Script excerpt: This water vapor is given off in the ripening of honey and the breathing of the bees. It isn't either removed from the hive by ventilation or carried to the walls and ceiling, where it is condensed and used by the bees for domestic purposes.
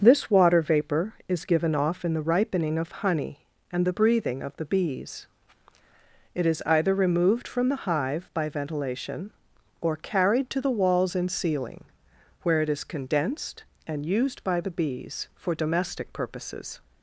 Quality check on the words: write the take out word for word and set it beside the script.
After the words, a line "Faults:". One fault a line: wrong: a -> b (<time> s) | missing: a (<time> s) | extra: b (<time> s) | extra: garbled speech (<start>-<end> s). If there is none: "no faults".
This water vapor is given off in the ripening of honey and the breathing of the bees. It is either removed from the hive by ventilation or carried to the walls and ceiling, where it is condensed and used by the bees for domestic purposes.
Faults:
wrong: isn't -> is (6.5 s)